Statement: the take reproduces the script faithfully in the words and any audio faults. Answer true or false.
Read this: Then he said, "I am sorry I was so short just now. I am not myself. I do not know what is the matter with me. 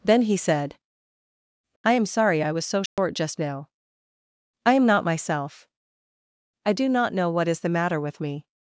false